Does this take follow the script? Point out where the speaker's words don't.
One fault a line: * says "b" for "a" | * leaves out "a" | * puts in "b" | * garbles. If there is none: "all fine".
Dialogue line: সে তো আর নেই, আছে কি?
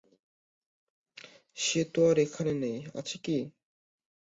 * puts in "এখানে"